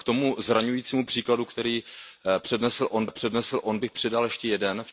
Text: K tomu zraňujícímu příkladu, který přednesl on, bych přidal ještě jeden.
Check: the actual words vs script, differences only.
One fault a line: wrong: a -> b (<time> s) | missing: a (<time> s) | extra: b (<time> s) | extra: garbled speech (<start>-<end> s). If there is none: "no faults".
extra: přednesl on (3.1 s)